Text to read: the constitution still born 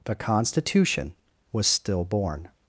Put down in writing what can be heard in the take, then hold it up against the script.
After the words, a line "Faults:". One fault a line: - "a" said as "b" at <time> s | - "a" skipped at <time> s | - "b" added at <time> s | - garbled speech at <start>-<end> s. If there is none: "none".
the constitution was still born
Faults:
- "was" added at 1.5 s